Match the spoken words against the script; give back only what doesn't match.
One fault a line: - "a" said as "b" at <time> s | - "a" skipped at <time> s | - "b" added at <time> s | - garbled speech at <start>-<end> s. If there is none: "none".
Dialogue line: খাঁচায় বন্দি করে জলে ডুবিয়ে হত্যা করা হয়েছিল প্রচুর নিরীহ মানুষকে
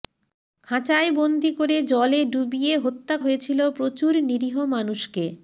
- "করা" skipped at 3.1 s